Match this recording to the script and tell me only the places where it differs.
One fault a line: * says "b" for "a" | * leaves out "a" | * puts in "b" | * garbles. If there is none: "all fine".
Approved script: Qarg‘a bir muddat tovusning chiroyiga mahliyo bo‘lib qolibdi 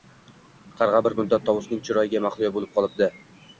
all fine